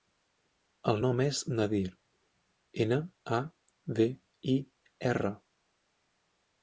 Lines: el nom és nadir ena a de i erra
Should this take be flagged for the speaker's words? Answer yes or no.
no